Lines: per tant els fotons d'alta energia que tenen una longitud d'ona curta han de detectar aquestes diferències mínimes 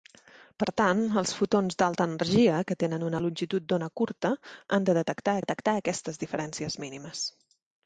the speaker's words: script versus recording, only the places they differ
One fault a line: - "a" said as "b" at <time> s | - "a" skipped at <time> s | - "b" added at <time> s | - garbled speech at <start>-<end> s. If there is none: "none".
- "detectar" added at 5.4 s